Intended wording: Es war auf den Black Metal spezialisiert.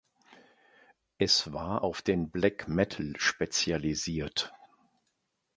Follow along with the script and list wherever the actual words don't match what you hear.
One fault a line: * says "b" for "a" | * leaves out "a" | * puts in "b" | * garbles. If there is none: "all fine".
all fine